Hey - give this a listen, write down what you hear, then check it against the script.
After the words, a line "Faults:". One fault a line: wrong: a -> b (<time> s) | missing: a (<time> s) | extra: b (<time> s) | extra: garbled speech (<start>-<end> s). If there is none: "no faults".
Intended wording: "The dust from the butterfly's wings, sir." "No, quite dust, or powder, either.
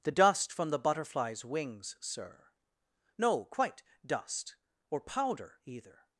"The dust from the butterfly's wings, sir." "No, quite dust, or powder, either.
Faults:
no faults